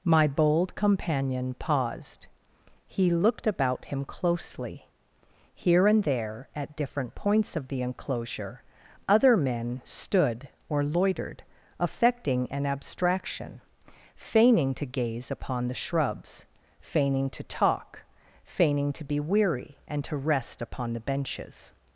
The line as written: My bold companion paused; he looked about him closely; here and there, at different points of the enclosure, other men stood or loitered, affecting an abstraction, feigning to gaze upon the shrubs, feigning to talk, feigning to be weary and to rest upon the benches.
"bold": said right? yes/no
yes